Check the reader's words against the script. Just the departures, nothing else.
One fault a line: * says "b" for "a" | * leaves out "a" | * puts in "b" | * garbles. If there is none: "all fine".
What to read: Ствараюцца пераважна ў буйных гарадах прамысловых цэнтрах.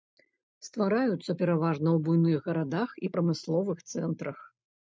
* puts in "і"